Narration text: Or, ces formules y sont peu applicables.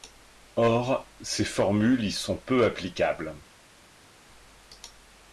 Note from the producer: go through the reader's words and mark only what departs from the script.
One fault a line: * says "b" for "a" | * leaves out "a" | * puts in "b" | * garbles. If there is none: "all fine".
all fine